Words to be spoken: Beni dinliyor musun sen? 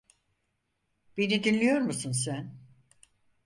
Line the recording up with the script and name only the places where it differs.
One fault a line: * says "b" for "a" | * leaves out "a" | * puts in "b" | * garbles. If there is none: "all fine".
all fine